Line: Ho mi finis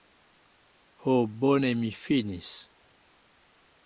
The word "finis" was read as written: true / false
true